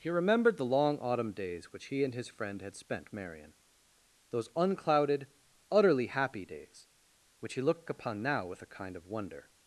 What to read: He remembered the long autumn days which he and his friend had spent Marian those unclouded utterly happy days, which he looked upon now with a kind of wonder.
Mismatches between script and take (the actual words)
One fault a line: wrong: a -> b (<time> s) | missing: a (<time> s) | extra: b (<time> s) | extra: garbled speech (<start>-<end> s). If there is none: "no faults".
no faults